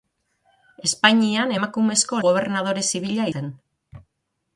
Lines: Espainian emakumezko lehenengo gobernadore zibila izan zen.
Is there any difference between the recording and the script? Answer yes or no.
yes